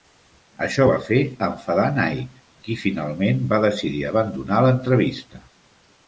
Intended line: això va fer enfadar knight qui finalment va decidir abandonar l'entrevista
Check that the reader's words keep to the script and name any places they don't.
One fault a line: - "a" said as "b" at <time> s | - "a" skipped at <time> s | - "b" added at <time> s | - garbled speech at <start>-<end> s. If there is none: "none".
none